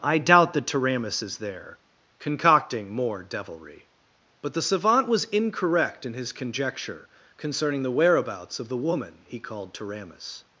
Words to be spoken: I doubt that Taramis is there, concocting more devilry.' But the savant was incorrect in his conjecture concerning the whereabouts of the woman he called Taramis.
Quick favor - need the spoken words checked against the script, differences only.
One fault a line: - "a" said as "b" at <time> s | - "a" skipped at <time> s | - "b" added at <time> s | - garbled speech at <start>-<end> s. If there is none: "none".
none